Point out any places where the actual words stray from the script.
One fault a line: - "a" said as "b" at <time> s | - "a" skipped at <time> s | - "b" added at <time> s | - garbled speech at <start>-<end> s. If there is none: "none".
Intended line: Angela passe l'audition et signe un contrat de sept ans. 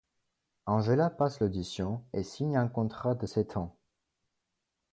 none